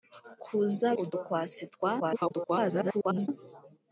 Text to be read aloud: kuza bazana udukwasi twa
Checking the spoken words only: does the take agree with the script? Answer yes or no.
no